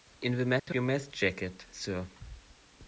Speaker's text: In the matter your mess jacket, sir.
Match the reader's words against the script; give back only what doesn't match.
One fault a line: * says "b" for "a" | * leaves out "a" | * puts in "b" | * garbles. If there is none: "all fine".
all fine